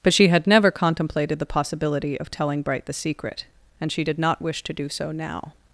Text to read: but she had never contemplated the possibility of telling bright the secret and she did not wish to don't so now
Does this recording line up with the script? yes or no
no